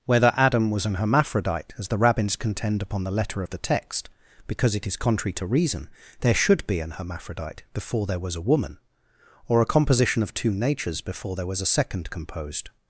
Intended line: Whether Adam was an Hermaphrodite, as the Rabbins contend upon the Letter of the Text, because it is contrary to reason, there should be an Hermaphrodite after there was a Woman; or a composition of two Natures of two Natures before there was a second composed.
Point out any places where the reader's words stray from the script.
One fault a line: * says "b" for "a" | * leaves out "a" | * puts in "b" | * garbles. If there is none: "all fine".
* says "before" for "after"
* leaves out "of two Natures"